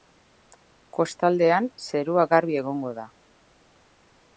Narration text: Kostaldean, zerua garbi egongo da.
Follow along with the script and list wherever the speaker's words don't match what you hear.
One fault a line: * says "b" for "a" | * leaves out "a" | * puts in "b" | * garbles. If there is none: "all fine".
all fine